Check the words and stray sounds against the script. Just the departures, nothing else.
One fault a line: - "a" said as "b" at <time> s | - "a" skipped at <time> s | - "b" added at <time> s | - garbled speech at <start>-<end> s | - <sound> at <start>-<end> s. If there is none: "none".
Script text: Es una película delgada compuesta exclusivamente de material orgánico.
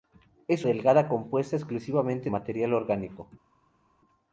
- "una película" skipped at 0.7 s
- "de" skipped at 2.3 s